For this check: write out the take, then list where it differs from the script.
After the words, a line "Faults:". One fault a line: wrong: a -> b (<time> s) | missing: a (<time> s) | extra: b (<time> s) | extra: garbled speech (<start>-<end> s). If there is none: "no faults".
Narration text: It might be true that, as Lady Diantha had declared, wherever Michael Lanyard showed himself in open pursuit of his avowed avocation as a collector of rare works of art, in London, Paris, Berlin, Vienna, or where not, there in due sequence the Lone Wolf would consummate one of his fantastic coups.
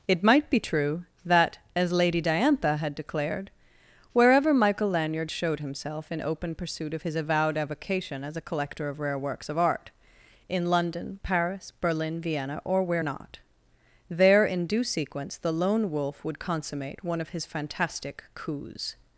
It might be true that, as Lady Diantha had declared, wherever Michael Lanyard showed himself in open pursuit of his avowed avocation as a collector of rare works of art, in London, Paris, Berlin, Vienna, or where not, there in due sequence the Lone Wolf would consummate one of his fantastic coups.
Faults:
no faults